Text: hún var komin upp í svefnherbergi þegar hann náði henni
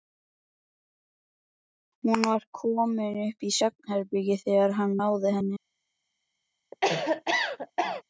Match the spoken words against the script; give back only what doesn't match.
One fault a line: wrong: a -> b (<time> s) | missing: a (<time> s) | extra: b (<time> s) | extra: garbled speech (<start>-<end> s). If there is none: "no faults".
no faults